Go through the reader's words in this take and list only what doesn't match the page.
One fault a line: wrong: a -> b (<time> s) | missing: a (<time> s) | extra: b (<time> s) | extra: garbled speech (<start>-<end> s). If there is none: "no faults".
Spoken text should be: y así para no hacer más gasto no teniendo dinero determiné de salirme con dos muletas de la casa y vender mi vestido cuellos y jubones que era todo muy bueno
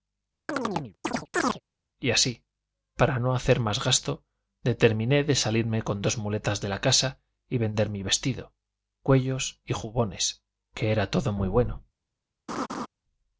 missing: no teniendo dinero (4.2 s)